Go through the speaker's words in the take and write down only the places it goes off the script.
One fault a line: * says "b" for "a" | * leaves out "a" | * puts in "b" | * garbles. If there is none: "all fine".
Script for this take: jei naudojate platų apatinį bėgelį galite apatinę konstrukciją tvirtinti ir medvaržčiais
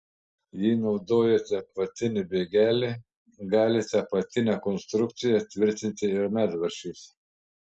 * leaves out "platų"